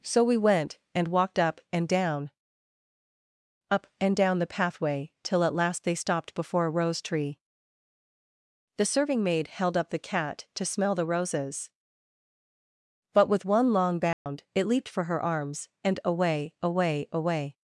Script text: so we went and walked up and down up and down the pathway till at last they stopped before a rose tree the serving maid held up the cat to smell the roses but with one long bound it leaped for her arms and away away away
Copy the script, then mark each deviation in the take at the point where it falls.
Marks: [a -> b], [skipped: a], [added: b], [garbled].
so we went and walked up and down up and down the pathway till at last they stopped before a rose tree the serving maid held up the cat to smell the roses but with one long bound it leaped for her arms and away away away